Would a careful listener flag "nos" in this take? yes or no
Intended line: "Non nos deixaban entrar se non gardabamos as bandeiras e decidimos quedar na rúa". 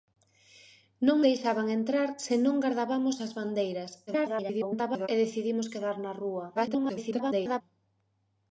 yes